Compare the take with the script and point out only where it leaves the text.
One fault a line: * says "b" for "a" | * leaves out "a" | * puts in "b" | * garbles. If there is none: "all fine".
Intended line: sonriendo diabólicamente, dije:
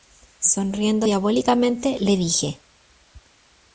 * puts in "le"